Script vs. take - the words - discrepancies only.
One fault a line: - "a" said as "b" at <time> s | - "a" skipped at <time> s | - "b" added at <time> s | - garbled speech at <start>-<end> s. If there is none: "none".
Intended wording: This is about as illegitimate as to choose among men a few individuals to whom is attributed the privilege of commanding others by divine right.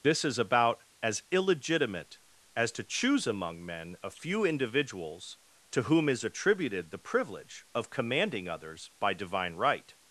none